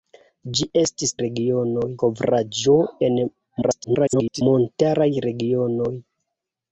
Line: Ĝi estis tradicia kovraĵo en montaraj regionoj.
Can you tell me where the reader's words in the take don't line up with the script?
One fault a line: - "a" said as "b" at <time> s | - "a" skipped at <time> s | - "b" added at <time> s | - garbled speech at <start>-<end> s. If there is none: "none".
- "tradicia" said as "regionoj" at 1.3 s
- garbled speech at 3.6-4.4 s